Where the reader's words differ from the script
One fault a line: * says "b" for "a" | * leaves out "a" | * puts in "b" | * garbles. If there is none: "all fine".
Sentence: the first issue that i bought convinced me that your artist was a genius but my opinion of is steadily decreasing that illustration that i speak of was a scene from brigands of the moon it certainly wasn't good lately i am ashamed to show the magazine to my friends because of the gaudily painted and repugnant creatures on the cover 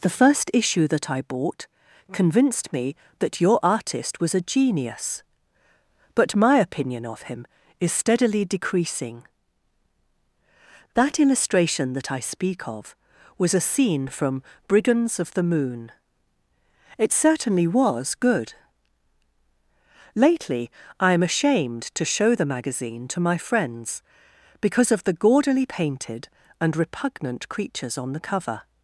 * puts in "him"
* says "was" for "wasn't"